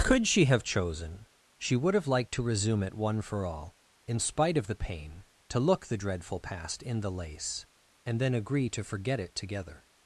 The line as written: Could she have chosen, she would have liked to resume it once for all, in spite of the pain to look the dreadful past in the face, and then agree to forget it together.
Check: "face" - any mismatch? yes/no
yes